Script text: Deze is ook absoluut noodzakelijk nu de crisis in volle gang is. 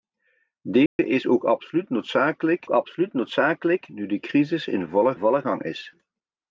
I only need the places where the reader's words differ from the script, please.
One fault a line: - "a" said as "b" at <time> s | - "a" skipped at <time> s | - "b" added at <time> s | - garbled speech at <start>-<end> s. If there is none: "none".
- "absoluut noodzakelijk" added at 2.7 s
- "volle" added at 5.2 s